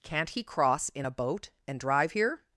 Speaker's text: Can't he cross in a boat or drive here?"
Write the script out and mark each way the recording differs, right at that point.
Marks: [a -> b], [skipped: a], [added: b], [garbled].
Can't he cross in a boat [or -> and] drive here?"